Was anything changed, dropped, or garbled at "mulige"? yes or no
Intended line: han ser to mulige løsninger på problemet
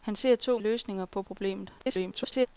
yes